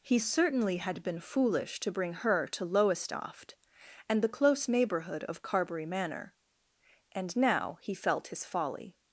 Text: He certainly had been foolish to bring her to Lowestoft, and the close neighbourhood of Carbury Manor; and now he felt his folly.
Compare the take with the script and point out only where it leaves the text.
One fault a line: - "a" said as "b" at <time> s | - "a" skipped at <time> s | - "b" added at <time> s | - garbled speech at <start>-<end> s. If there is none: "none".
none